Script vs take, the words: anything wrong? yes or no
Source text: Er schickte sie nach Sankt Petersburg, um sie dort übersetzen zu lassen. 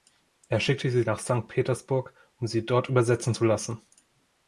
no